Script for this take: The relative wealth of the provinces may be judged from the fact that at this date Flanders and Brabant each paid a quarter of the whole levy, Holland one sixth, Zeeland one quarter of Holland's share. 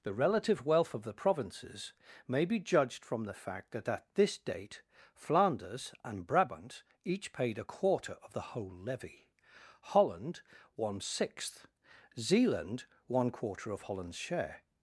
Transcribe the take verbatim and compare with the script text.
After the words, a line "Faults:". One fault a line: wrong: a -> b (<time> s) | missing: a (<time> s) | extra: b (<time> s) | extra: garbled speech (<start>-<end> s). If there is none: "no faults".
The relative wealth of the provinces may be judged from the fact that at this date Flanders and Brabant each paid a quarter of the whole levy, Holland one sixth, Zeeland one quarter of Holland's share.
Faults:
no faults